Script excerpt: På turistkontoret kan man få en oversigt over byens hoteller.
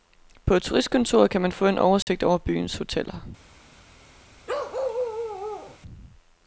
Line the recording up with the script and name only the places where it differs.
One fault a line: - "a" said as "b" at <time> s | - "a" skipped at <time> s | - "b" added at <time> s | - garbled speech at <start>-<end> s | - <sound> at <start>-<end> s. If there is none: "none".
- dropout at 2.0-2.1 s
- bark at 4.5-5.8 s